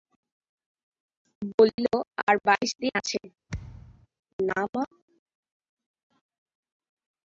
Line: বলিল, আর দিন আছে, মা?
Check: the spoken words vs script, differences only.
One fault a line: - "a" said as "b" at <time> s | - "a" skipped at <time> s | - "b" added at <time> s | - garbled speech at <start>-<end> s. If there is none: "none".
- "বাইশ" added at 2.5 s
- "না" added at 4.4 s